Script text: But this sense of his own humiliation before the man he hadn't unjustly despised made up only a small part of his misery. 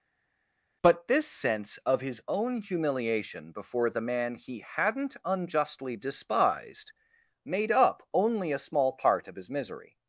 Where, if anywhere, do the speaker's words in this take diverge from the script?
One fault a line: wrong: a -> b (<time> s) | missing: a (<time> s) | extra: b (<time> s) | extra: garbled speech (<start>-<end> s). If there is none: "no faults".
no faults